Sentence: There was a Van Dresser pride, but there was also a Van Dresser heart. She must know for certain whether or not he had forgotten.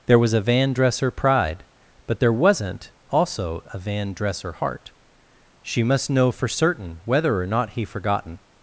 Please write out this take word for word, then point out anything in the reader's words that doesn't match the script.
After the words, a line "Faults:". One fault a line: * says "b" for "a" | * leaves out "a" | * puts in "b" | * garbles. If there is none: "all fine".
There was a Van Dresser pride, but there wasn't also a Van Dresser heart. She must know for certain whether or not he forgotten.
Faults:
* says "wasn't" for "was"
* leaves out "had"